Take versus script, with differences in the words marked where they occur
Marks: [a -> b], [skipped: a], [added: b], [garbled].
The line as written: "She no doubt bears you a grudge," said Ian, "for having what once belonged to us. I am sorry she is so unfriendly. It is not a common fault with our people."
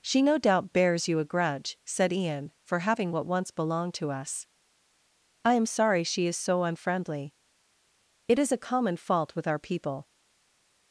"She no doubt bears you a grudge," said Ian, "for having what once belonged to us. I am sorry she is so unfriendly. It is [skipped: not] a common fault with our people."